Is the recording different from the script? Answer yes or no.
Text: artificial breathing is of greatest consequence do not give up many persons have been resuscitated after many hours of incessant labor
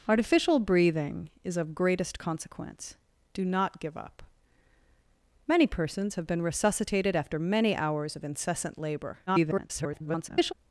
yes